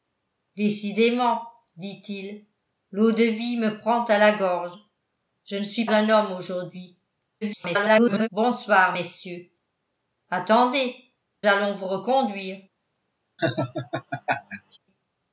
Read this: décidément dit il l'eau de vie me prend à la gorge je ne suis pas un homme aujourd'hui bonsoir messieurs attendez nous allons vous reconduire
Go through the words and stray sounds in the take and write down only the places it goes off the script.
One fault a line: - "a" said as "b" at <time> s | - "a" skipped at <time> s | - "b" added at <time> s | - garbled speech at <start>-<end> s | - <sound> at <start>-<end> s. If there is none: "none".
- "pas" skipped at 5.8 s
- garbled speech at 7.4-8.3 s
- "nous" skipped at 10.9 s
- laugh at 13.4-14.8 s